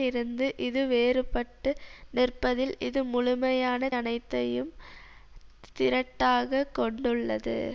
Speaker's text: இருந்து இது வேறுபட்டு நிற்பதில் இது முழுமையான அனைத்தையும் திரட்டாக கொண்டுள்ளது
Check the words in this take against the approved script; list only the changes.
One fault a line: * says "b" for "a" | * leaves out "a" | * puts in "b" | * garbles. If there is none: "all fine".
all fine